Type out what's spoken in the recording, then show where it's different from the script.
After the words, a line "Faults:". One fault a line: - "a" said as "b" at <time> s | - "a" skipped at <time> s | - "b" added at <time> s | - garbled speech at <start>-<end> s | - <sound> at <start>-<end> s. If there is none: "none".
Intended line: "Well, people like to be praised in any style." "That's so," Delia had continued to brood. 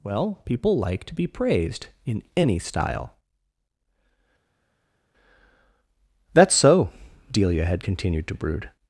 "Well, people like to be praised in any style." "That's so," Delia had continued to brood.
Faults:
none